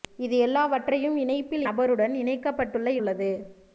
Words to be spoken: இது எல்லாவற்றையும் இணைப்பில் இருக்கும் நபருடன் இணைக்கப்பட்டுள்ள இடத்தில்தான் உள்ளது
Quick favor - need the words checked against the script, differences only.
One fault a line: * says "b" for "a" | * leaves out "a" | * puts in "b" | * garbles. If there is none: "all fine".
* leaves out "இருக்கும்"
* leaves out "இடத்தில்தான்"